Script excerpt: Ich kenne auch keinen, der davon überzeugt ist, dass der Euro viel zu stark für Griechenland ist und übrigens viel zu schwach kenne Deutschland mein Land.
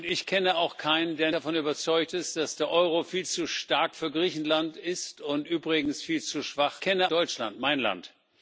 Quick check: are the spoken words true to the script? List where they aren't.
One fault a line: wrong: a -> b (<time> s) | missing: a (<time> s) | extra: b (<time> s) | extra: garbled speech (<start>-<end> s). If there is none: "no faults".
no faults